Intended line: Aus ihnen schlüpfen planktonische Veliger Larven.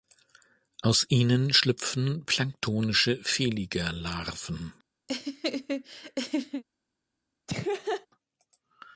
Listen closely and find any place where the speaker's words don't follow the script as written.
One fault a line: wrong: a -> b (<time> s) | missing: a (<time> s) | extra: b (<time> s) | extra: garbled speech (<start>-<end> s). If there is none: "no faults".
no faults